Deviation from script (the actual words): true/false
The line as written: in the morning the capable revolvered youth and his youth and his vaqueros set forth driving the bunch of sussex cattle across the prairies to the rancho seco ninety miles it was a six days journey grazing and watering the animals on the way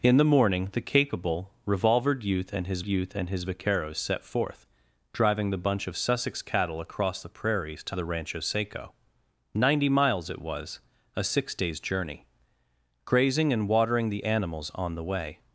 false